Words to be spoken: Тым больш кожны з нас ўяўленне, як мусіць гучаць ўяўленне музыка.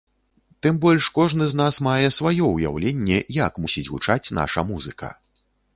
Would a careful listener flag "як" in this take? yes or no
no